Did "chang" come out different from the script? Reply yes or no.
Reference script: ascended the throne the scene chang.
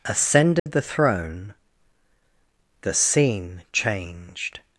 yes